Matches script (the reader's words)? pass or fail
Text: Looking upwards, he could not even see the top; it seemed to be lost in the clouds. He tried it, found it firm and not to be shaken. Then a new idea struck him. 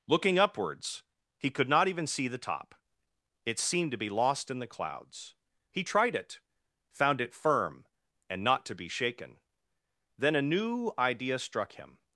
pass